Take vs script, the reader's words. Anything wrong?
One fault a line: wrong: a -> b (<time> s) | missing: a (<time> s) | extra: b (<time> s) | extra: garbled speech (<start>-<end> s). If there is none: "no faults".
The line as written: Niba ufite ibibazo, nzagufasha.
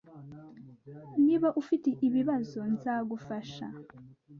no faults